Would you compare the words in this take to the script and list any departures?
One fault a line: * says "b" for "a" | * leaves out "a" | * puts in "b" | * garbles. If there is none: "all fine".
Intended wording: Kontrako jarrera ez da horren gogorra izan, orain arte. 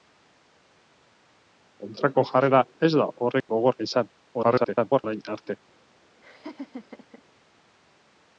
* garbles